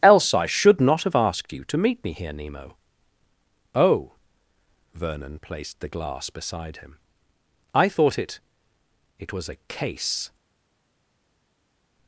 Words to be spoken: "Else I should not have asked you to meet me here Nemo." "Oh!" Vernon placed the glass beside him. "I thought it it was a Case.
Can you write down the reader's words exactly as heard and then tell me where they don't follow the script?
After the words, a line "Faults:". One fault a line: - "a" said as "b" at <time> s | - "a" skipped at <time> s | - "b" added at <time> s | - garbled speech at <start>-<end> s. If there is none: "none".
"Else I should not have asked you to meet me here Nemo." "Oh!" Vernon placed the glass beside him. "I thought it it was a Case.
Faults:
none